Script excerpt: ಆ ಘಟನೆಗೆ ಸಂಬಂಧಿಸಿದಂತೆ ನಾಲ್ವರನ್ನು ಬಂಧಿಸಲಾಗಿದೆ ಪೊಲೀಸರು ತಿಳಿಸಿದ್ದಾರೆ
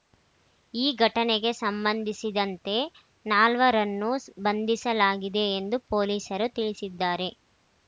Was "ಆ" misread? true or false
true